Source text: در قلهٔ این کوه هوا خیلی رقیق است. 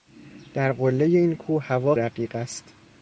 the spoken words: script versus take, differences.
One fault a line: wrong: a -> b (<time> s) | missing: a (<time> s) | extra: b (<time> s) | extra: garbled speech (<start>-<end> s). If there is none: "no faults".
missing: خیلی (1.9 s)